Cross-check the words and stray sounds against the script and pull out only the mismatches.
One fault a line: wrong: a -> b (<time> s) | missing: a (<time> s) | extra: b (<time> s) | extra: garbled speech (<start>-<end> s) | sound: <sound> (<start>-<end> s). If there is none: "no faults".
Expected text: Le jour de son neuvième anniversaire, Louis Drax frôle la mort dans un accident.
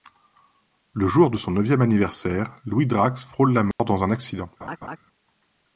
sound: dropout (3.7-3.8 s)
sound: laugh (4.6-5.0 s)